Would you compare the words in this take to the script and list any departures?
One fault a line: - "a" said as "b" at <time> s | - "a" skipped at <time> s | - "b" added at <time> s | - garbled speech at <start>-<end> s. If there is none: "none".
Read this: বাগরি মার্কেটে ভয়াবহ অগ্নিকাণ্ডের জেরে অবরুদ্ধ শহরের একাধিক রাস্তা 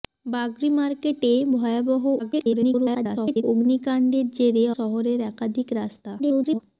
- garbled speech at 2.2-3.4 s
- "অবরুদ্ধ" skipped at 4.6 s
- garbled speech at 6.2-6.6 s